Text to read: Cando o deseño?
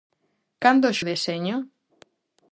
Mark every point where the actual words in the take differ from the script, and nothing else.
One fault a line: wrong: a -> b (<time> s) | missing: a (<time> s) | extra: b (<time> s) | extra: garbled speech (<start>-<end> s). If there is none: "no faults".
no faults